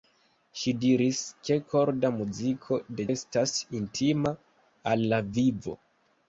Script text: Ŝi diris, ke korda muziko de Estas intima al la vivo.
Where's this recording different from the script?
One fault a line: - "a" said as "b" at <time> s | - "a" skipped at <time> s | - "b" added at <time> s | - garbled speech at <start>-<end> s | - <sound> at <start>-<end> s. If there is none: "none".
none